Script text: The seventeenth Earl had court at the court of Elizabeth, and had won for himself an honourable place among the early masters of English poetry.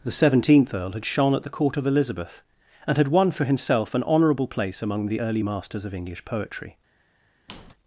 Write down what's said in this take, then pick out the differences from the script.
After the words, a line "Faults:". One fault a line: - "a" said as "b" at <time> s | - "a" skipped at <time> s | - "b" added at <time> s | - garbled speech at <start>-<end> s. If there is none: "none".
The seventeenth Earl had shone at the court of Elizabeth, and had won for himself an honourable place among the early masters of English poetry.
Faults:
- "court" said as "shone" at 1.1 s